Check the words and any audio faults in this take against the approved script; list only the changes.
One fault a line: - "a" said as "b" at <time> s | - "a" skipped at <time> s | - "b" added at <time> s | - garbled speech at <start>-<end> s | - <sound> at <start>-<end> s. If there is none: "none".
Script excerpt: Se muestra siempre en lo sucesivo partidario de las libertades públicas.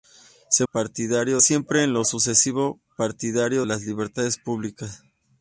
- "muestra" said as "partidario" at 0.7 s
- "de" skipped at 3.7 s